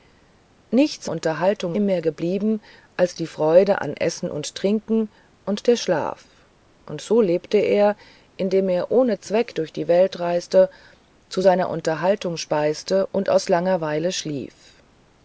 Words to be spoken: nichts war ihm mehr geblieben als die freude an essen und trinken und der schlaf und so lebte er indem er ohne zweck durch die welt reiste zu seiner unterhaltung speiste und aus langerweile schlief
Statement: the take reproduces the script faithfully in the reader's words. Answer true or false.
false